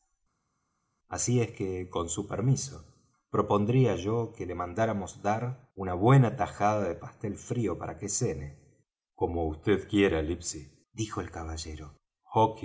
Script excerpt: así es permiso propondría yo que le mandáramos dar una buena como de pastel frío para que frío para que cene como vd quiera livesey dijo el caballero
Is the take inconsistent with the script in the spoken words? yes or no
yes